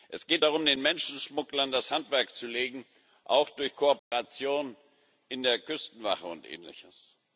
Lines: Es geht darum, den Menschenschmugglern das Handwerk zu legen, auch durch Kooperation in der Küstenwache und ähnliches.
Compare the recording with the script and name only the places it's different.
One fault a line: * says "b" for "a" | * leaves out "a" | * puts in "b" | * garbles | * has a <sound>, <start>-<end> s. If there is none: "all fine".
* has a dropout, 4.0-4.1 s